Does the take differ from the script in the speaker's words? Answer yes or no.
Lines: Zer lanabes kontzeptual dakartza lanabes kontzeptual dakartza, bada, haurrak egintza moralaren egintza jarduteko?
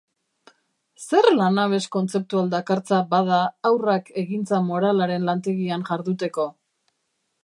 yes